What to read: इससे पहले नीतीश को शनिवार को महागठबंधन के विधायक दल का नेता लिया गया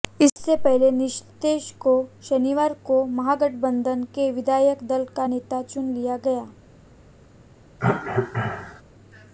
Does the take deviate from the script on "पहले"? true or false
false